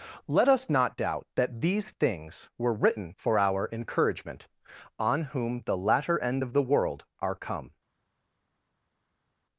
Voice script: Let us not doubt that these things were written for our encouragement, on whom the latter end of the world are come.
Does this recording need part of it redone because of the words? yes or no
no